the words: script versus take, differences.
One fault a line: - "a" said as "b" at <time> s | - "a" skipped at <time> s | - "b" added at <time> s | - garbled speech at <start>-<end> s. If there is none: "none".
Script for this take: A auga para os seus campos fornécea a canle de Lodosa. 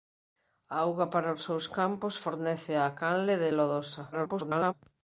- garbled speech at 4.1-4.7 s